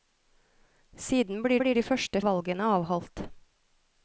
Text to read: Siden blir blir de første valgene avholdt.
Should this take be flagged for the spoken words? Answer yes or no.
no